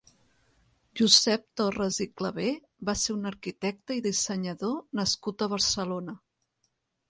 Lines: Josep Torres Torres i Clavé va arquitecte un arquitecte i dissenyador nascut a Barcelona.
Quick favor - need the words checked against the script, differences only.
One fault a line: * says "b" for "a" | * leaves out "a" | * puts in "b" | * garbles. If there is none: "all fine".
* leaves out "Torres"
* says "ser" for "arquitecte"